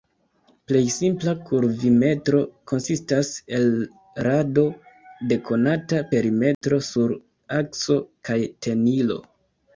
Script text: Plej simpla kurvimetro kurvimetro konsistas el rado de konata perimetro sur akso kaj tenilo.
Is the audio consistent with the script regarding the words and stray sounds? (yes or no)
no